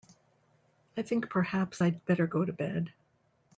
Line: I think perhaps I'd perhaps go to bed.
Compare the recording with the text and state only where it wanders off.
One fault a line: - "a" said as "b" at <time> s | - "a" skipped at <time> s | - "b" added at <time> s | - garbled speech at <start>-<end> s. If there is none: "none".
- "perhaps" said as "better" at 2.0 s